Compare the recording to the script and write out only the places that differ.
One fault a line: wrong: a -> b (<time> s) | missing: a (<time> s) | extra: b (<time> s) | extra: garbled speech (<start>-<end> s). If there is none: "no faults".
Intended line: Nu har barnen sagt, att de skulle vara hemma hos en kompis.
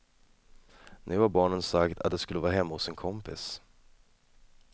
no faults